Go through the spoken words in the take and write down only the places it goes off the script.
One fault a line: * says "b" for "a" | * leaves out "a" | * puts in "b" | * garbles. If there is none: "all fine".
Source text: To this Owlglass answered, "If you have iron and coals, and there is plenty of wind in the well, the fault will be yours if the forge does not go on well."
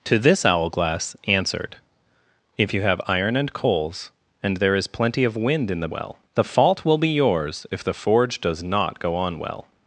all fine